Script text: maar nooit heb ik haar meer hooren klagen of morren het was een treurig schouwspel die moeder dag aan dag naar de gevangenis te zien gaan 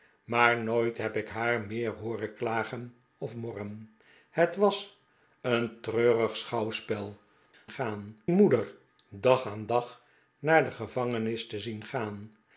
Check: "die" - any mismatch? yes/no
yes